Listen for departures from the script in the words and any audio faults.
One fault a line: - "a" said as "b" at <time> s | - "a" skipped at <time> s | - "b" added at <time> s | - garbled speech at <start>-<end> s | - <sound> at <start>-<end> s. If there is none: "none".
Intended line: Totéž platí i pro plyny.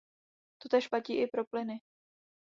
none